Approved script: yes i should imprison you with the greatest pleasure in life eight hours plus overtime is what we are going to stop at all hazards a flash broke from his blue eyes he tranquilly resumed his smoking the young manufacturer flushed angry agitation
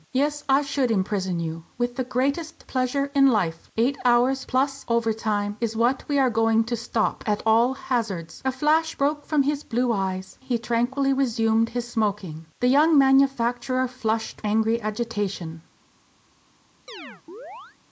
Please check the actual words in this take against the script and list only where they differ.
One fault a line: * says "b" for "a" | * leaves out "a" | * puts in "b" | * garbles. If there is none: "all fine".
all fine